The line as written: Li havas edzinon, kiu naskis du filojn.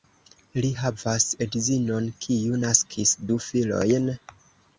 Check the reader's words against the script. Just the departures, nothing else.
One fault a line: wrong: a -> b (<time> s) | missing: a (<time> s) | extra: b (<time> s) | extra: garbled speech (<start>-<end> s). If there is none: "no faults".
no faults